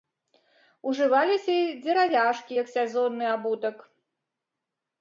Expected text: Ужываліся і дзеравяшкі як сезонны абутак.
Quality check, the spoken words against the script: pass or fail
pass